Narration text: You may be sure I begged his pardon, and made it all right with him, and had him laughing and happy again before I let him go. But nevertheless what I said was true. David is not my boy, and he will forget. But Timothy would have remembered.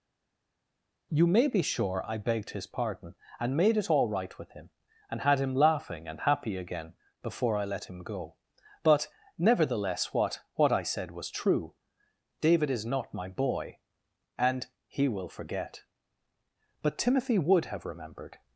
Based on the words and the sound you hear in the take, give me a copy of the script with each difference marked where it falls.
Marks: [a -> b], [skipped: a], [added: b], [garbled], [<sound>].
You may be sure I begged his pardon, and made it all right with him, and had him laughing and happy again before I let him go. But nevertheless what [added: what] I said was true. David is not my boy, and he will forget. But Timothy would have remembered.